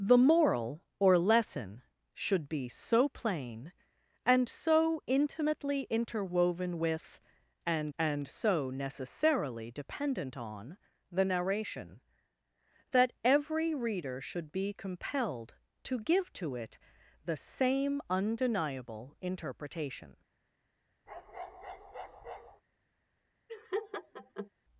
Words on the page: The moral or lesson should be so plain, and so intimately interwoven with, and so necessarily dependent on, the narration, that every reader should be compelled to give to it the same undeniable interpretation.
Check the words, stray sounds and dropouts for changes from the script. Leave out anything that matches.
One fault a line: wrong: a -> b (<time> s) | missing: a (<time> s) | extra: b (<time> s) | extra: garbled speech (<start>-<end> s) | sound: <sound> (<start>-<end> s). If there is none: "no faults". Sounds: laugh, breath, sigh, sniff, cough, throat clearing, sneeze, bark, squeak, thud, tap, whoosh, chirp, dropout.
extra: and (8.0 s)
sound: bark (21.1-22.6 s)
sound: laugh (23.5-24.5 s)